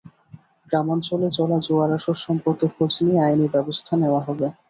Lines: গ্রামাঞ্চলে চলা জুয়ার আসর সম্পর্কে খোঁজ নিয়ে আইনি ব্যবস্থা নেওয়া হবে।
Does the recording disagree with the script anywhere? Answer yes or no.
no